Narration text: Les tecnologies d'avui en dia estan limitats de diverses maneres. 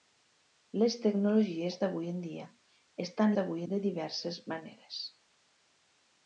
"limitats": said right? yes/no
no